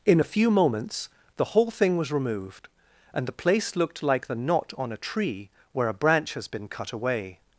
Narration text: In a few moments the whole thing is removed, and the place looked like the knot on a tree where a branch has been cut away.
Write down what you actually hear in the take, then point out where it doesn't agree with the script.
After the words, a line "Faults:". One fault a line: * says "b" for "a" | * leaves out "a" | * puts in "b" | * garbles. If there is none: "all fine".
In a few moments the whole thing was removed, and the place looked like the knot on a tree where a branch has been cut away.
Faults:
* says "was" for "is"